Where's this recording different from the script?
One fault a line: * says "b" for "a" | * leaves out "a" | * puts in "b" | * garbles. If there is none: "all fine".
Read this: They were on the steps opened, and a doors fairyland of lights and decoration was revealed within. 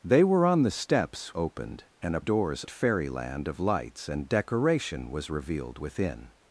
all fine